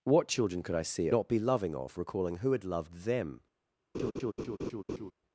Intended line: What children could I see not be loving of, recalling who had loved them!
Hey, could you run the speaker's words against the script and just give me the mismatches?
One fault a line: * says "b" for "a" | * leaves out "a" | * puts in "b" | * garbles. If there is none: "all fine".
all fine